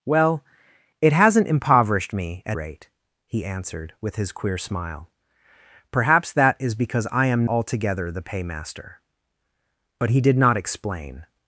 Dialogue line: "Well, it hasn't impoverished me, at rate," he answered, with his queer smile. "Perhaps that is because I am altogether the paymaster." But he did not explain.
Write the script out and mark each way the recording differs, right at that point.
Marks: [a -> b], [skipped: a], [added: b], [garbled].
"Well, it hasn't impoverished me, at rate," he answered, with his queer smile. "Perhaps that is because I am altogether the paymaster." But he did not explain.